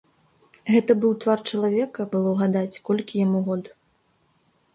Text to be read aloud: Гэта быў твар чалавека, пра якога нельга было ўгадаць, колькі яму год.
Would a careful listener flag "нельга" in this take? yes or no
yes